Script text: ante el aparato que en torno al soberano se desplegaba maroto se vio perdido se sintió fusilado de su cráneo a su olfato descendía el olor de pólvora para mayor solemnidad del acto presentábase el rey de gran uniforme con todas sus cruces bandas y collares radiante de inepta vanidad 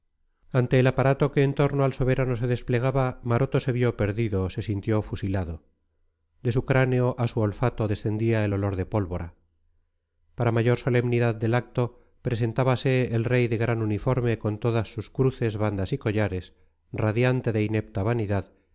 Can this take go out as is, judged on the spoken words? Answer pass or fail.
pass